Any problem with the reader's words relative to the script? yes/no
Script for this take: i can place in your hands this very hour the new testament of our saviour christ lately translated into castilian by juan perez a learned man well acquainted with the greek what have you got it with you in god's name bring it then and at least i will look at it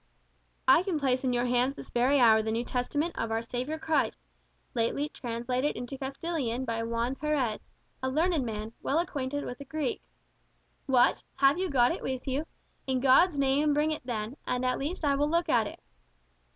no